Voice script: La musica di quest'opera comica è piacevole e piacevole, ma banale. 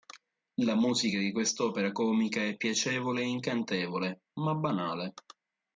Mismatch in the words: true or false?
true